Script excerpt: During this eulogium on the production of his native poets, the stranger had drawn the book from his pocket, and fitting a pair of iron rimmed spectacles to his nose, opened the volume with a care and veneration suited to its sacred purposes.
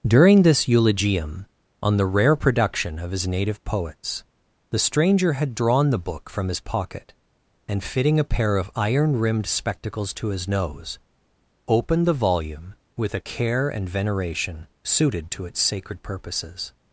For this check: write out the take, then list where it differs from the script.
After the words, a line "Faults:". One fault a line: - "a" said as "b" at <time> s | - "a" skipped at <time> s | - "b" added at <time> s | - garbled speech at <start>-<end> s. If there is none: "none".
During this eulogium on the rare production of his native poets, the stranger had drawn the book from his pocket, and fitting a pair of iron rimmed spectacles to his nose, opened the volume with a care and veneration suited to its sacred purposes.
Faults:
- "rare" added at 2.1 s